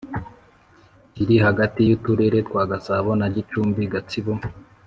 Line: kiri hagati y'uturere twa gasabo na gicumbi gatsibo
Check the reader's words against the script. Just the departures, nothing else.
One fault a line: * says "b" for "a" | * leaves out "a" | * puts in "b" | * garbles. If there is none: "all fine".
all fine